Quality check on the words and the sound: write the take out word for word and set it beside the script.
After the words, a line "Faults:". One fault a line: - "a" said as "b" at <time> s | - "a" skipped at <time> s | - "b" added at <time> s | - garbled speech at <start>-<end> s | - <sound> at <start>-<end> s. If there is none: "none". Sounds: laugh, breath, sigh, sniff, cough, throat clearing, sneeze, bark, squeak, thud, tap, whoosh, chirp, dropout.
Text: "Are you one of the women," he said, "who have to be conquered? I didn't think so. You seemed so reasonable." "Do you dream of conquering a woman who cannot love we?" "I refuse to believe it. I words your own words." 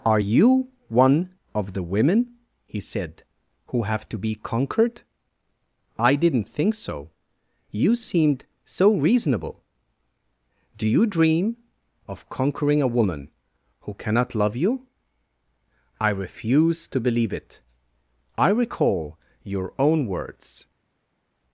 "Are you one of the women," he said, "who have to be conquered? I didn't think so. You seemed so reasonable." "Do you dream of conquering a woman who cannot love you?" "I refuse to believe it. I recall your own words."
Faults:
- "we" said as "you" at 14.6 s
- "words" said as "recall" at 18.5 s